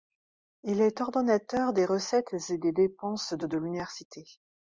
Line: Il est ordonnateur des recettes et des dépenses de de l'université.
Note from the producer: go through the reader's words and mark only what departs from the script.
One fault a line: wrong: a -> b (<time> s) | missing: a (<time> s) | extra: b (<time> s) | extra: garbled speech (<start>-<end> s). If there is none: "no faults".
no faults